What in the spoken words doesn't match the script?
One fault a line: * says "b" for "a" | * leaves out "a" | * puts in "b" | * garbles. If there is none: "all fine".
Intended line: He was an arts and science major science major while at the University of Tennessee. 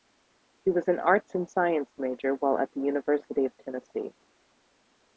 * leaves out "science major"